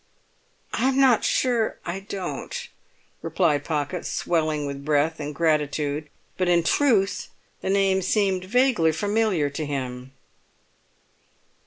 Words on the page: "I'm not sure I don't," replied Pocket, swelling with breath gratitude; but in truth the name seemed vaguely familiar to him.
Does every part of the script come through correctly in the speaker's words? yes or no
no